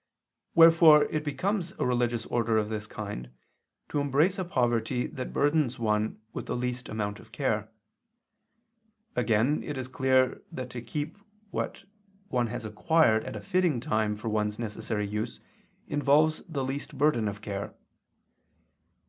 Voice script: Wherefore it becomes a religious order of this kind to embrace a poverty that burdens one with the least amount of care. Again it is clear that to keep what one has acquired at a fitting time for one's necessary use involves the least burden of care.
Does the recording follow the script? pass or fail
pass